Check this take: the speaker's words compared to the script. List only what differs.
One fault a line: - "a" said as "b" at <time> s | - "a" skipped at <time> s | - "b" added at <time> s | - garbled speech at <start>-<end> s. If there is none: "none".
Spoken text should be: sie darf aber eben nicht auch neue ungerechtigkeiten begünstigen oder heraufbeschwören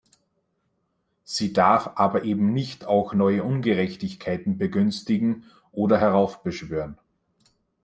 none